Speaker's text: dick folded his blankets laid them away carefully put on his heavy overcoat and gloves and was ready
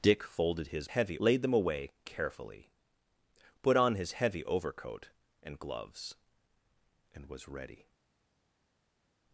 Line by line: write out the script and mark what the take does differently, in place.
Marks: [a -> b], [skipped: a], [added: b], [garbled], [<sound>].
dick folded his [blankets -> heavy] laid them away carefully put on his heavy overcoat and gloves and was ready